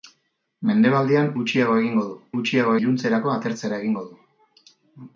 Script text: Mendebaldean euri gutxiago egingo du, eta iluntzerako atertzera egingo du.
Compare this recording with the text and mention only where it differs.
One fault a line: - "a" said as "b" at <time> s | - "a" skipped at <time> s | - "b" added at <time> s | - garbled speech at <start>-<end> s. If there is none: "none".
- "euri" skipped at 1.3 s
- "eta" said as "gutxiago" at 2.4 s